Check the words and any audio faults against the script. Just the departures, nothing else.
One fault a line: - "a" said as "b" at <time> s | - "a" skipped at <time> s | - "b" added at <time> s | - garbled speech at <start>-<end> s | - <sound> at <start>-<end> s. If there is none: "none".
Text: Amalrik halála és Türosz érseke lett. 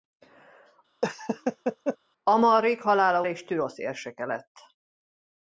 - laugh at 1.0-2.0 s